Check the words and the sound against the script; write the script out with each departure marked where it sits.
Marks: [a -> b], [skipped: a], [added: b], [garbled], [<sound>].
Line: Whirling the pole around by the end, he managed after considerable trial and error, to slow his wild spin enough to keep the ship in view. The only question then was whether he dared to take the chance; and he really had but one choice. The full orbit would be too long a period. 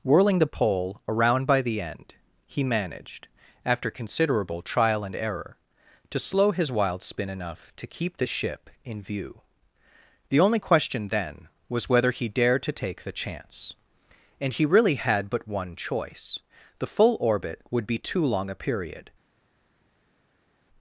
Whirling the pole around by the end, he managed after considerable trial and error, to slow his wild spin enough to keep the ship in view. The only question then was whether he dared to take the chance; and he really had but one choice. The full orbit would be too long a period.